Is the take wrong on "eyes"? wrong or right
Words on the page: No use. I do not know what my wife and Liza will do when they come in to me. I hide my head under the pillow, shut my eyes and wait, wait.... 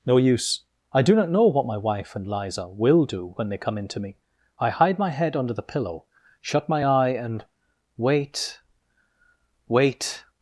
wrong